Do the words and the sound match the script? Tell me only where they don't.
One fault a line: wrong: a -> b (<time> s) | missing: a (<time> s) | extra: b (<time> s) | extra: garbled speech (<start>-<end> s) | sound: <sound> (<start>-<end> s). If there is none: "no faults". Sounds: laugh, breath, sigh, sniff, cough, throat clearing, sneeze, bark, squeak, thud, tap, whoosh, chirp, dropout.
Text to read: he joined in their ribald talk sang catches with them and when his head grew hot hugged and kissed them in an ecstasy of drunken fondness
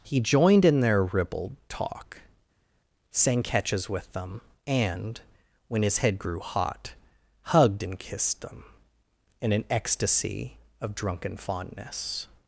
no faults